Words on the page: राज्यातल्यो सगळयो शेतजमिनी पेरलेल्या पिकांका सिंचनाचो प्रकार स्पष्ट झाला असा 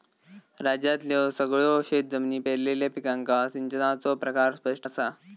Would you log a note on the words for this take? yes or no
yes